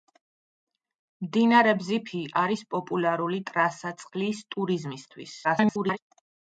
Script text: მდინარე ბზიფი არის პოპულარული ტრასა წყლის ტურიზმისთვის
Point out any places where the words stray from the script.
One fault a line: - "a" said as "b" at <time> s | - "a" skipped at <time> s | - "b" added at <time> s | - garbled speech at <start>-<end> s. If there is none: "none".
- garbled speech at 5.4-6.0 s